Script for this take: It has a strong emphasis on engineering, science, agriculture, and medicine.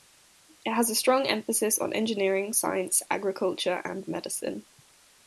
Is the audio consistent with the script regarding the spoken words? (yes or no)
yes